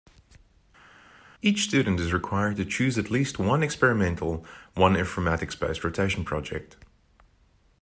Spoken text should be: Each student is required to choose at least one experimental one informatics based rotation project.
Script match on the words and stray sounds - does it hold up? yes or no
yes